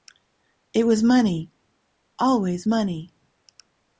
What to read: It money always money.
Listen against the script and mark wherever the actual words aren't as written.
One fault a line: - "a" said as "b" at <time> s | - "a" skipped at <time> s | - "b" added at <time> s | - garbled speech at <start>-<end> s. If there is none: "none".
- "was" added at 0.9 s